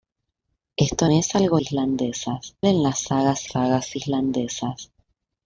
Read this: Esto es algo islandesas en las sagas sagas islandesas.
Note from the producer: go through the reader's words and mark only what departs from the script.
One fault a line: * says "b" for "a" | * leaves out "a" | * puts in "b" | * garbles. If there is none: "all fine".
all fine